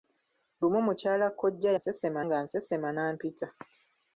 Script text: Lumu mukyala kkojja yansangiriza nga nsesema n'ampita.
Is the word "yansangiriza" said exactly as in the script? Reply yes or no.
no